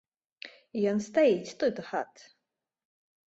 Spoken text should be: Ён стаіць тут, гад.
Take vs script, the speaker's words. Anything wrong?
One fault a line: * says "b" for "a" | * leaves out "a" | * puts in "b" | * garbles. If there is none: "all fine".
all fine